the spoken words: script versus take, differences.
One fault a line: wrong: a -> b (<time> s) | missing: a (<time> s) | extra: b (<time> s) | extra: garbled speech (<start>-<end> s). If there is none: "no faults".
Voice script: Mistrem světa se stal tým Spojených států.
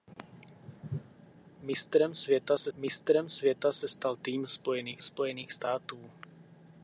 extra: mistrem světa se (2.8 s)
extra: Spojených (5.0 s)